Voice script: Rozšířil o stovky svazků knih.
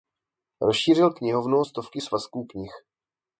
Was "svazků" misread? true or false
false